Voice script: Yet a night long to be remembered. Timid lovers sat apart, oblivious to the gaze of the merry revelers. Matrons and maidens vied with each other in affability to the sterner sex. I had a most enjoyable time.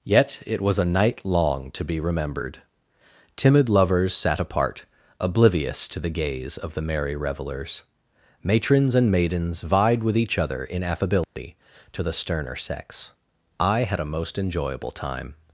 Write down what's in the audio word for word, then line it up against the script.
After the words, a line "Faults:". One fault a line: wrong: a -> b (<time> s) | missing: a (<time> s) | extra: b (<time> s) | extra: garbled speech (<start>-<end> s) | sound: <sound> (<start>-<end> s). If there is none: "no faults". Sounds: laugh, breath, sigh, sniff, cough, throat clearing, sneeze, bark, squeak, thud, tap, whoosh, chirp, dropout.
Yet it was a night long to be remembered. Timid lovers sat apart, oblivious to the gaze of the merry revelers. Matrons and maidens vied with each other in affability to the sterner sex. I had a most enjoyable time.
Faults:
extra: it was (0.5 s)
sound: dropout (11.2-11.4 s)